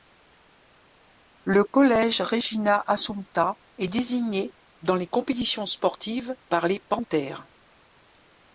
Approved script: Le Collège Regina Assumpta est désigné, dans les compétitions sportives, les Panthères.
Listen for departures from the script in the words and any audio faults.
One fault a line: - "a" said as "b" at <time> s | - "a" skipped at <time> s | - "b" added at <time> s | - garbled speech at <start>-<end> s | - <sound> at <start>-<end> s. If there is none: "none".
- dropout at 1.7-1.7 s
- "par" added at 6.5 s